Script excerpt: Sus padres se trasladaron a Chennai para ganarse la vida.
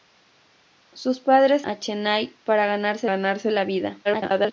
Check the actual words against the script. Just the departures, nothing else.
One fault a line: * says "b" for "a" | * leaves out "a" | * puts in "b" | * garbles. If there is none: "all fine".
* leaves out "se trasladaron"
* puts in "ganarse"
* garbles